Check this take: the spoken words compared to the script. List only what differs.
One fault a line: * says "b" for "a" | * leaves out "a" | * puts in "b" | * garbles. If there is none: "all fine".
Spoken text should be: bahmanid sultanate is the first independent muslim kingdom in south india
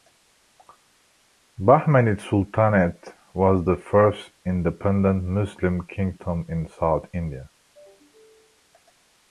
* says "was" for "is"